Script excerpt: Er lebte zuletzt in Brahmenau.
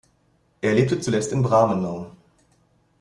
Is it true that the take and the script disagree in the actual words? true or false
false